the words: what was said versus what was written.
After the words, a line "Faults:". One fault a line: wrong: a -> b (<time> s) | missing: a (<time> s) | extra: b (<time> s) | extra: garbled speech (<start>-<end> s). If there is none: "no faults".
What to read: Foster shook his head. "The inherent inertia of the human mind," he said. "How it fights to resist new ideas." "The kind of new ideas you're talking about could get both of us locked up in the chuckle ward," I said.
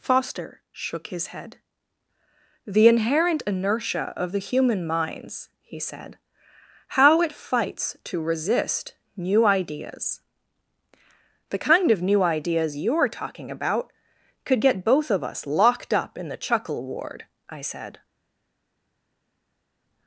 Foster shook his head. "The inherent inertia of the human minds," he said. "How it fights to resist new ideas." "The kind of new ideas you're talking about could get both of us locked up in the chuckle ward," I said.
Faults:
wrong: mind -> minds (4.8 s)